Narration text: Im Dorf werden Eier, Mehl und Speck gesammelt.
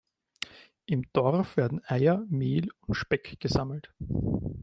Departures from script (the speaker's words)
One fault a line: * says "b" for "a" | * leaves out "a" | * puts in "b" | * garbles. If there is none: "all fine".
all fine